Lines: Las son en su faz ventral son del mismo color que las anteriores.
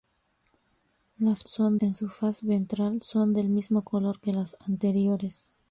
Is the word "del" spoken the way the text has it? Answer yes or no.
yes